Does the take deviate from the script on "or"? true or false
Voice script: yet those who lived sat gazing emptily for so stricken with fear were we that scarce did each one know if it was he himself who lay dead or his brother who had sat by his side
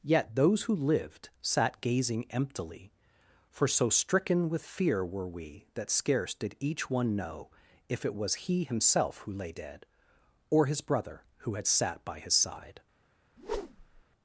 false